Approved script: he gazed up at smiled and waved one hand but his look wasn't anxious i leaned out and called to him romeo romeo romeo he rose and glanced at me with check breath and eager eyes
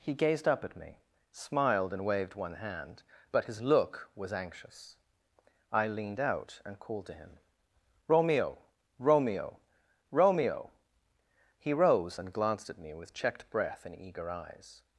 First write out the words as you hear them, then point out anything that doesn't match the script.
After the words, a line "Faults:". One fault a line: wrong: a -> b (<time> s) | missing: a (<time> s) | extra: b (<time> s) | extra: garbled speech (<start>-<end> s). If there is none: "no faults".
he gazed up at me smiled and waved one hand but his look was anxious i leaned out and called to him romeo romeo romeo he rose and glanced at me with checked breath and eager eyes
Faults:
extra: me (0.8 s)
wrong: wasn't -> was (4.2 s)
wrong: check -> checked (13.1 s)